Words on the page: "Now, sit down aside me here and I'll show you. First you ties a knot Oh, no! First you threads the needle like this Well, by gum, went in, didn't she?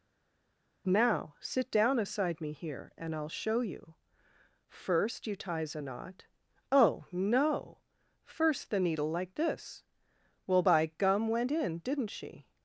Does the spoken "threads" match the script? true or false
false